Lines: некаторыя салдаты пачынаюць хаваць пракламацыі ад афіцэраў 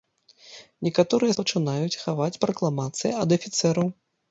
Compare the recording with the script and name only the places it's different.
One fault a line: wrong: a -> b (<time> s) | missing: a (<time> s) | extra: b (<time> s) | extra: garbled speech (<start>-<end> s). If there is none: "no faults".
missing: салдаты (1.4 s)